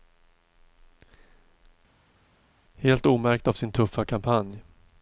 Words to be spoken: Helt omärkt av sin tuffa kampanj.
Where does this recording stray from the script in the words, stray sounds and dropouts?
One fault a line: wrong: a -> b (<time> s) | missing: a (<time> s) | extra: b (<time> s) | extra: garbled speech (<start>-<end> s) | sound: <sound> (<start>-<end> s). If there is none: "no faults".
no faults